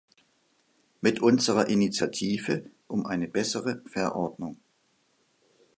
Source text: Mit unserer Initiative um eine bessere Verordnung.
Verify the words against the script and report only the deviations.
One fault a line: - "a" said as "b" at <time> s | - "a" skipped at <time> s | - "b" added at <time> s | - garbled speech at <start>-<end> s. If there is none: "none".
none